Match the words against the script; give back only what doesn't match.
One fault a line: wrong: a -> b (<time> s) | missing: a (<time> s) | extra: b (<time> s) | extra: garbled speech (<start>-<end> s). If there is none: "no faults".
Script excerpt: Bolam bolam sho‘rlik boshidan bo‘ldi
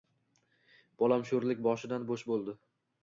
missing: bolam (1.2 s)
extra: bo‘sh (2.1 s)